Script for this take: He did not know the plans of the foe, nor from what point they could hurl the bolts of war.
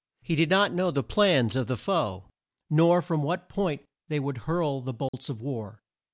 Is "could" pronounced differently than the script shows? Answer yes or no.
yes